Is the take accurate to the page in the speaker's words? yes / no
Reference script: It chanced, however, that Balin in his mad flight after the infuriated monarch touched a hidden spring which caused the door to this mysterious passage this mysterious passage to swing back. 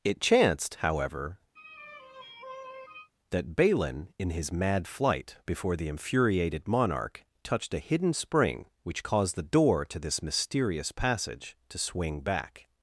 no